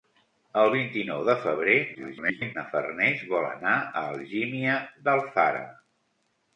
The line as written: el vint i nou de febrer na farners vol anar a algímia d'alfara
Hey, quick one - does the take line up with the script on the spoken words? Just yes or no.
no